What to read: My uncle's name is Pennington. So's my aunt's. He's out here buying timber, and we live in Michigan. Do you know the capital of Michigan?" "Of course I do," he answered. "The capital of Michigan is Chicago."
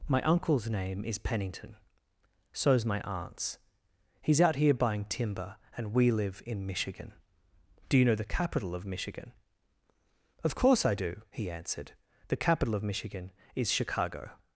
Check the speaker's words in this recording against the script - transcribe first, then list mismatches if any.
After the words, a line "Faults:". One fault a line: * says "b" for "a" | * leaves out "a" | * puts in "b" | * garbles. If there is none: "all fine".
My uncle's name is Pennington. So's my aunt's. He's out here buying timber, and we live in Michigan. Do you know the capital of Michigan?" "Of course I do," he answered. "The capital of Michigan is Chicago."
Faults:
all fine